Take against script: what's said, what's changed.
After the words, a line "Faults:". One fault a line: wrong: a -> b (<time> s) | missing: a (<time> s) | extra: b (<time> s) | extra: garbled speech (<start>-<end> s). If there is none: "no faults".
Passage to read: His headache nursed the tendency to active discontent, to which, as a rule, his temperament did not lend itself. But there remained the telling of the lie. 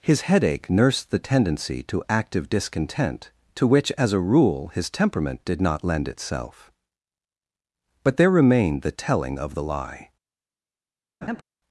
His headache nursed the tendency to active discontent, to which, as a rule, his temperament did not lend itself. But there remained the telling of the lie.
Faults:
no faults